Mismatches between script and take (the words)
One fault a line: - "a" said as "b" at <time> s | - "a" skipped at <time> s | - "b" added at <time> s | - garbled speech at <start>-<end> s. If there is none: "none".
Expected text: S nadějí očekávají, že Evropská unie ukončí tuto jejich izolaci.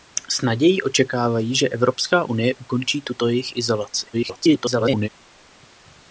- garbled speech at 4.1-5.1 s